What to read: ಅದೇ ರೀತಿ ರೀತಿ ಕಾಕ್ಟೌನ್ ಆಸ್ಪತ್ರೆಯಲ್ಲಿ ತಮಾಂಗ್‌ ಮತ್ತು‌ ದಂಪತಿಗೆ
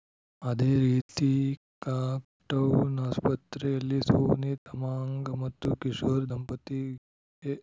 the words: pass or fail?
fail